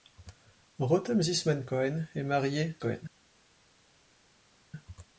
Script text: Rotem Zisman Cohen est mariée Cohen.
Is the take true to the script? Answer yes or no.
yes